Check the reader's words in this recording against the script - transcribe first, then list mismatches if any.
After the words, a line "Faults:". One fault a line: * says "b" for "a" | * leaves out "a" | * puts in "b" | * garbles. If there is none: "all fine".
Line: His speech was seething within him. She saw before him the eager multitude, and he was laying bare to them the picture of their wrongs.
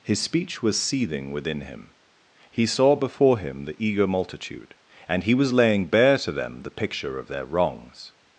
His speech was seething within him. He saw before him the eager multitude, and he was laying bare to them the picture of their wrongs.
Faults:
* says "He" for "She"